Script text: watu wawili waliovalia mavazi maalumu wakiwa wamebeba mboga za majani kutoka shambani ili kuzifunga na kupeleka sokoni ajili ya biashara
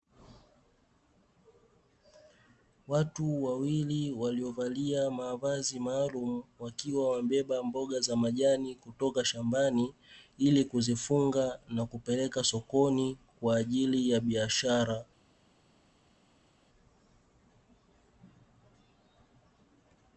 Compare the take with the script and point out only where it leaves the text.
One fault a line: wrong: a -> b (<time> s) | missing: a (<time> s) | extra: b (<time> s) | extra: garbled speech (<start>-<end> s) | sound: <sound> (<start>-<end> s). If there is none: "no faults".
extra: kwa (13.4 s)